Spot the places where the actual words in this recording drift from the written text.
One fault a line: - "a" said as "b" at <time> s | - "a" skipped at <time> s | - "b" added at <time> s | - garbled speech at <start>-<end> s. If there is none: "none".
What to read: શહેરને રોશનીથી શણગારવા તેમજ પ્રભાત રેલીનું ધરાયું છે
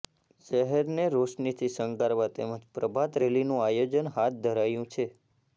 - "આયોજન હાથ" added at 3.7 s